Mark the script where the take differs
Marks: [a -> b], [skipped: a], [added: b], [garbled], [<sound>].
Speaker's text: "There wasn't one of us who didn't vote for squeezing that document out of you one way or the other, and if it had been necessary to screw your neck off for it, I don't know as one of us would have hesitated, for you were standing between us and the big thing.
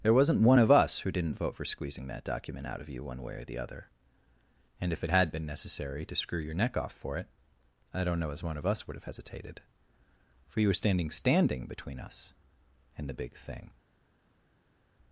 "There wasn't one of us who didn't vote for squeezing that document out of you one way or the other, and if it had been necessary to screw your neck off for it, I don't know as one of us would have hesitated, for you were standing [added: standing] between us and the big thing.